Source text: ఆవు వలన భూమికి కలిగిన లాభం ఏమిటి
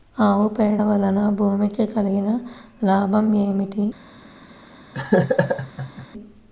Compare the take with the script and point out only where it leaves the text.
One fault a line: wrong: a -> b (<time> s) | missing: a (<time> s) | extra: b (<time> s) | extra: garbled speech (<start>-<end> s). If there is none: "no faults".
extra: పేడ (0.5 s)